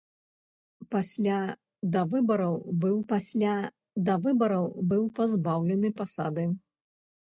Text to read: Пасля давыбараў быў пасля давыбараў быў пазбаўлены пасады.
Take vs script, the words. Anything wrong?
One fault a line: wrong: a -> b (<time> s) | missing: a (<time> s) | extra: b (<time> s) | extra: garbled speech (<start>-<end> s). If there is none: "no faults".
no faults